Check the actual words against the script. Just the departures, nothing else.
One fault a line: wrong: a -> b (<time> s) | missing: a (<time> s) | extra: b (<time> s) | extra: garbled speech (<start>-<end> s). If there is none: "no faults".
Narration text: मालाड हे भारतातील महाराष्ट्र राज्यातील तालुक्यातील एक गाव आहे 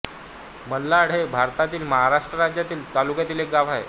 no faults